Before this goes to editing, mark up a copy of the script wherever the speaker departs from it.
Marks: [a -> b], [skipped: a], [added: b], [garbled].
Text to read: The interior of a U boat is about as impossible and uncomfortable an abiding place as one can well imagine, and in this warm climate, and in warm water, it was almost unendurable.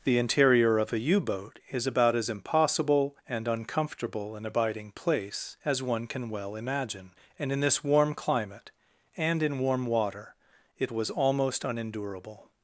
The interior of a U boat is about as impossible and uncomfortable an abiding place as one can well imagine, and in this warm climate, and in warm water, it was almost unendurable.